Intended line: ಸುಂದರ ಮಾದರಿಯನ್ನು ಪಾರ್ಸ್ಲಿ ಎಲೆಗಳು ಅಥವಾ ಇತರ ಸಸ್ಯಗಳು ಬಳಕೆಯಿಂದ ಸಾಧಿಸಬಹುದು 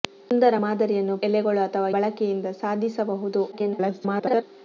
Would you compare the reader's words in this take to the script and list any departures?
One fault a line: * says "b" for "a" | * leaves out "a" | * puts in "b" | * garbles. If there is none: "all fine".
* leaves out "ಪಾರ್ಸ್ಲಿ"
* leaves out "ಇತರ ಸಸ್ಯಗಳು"
* garbles